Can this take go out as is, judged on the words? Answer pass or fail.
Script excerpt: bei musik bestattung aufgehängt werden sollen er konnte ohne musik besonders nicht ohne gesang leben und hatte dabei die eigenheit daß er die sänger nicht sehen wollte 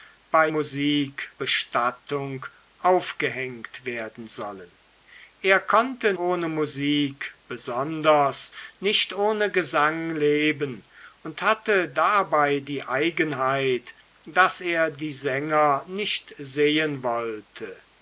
pass